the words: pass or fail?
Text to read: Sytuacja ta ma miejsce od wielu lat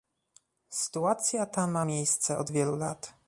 pass